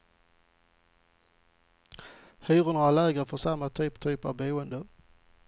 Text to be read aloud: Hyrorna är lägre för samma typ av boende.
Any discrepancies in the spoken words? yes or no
yes